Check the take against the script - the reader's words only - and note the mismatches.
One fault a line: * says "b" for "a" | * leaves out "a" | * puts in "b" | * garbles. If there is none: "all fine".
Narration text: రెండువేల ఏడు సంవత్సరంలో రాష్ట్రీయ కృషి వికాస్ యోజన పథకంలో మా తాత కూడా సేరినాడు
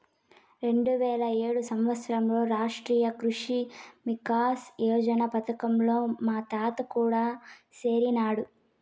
all fine